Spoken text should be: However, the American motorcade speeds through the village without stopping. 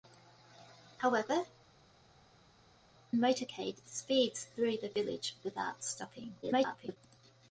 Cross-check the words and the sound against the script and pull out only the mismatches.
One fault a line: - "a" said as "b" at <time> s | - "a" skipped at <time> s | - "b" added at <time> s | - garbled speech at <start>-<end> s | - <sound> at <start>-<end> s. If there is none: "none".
- "the American" skipped at 1.4 s
- garbled speech at 6.4-7.0 s